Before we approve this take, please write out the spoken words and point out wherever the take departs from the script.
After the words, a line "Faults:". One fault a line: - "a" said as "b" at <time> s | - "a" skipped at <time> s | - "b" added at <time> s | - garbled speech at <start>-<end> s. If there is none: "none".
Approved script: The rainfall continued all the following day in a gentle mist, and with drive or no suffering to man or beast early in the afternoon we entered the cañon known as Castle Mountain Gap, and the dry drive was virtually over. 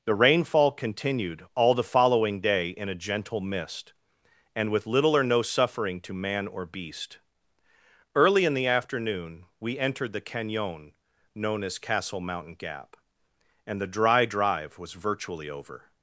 The rainfall continued all the following day in a gentle mist, and with little or no suffering to man or beast early in the afternoon we entered the cañon known as Castle Mountain Gap, and the dry drive was virtually over.
Faults:
- "drive" said as "little" at 4.9 s